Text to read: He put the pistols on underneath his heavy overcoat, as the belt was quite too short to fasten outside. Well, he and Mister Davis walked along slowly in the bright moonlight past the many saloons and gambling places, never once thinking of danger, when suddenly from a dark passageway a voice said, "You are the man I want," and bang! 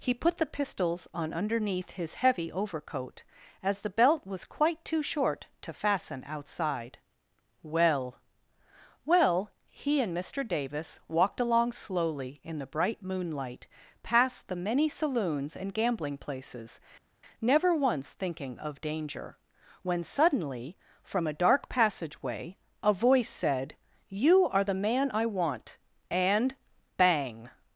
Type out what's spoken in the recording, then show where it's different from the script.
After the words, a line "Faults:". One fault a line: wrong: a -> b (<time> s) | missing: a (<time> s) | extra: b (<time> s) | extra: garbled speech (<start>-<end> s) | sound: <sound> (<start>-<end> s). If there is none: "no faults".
He put the pistols on underneath his heavy overcoat, as the belt was quite too short to fasten outside. Well Well, he and Mister Davis walked along slowly in the bright moonlight past the many saloons and gambling places, never once thinking of danger, when suddenly from a dark passageway a voice said, "You are the man I want," and bang!
Faults:
extra: Well (9.1 s)